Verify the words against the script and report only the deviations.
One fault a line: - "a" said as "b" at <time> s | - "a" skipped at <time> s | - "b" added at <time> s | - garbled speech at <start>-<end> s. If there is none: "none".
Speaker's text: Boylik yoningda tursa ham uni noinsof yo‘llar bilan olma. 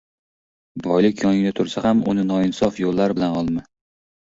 none